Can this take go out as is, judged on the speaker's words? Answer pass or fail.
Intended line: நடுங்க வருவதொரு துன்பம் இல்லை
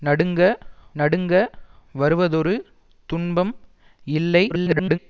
fail